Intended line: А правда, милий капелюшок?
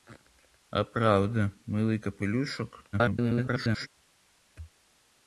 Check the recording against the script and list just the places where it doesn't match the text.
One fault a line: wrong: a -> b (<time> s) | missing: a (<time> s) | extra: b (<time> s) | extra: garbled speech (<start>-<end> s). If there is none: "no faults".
extra: garbled speech (2.9-3.9 s)